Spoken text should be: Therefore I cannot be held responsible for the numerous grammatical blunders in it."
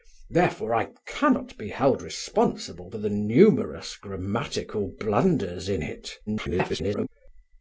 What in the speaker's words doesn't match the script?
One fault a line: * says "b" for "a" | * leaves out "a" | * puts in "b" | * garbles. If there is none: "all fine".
* garbles